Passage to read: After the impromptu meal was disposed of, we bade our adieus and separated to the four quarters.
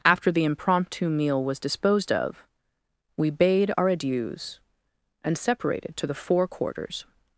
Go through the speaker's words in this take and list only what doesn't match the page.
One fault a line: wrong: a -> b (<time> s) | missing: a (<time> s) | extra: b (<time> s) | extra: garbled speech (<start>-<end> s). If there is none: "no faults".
no faults